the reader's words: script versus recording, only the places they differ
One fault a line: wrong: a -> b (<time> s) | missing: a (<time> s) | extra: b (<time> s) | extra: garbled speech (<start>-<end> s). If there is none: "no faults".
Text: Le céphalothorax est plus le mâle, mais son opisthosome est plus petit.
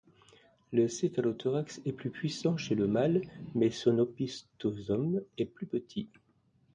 extra: puissant chez (2.1 s)